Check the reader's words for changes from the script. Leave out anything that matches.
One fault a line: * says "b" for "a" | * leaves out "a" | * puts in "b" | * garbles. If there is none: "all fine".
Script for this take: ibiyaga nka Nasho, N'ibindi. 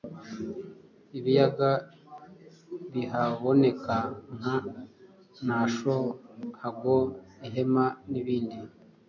* puts in "bihaboneka"
* puts in "Hago Ihema"